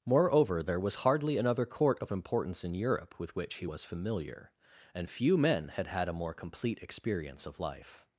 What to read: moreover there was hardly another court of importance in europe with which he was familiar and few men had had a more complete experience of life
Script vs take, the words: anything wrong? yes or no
no